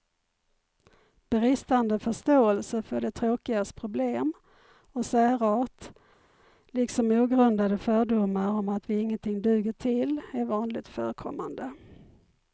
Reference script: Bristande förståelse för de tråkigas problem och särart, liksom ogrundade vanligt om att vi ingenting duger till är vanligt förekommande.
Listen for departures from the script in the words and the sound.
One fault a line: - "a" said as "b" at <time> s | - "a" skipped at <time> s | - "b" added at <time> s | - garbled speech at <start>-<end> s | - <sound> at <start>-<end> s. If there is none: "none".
- "vanligt" said as "fördomar" at 7.8 s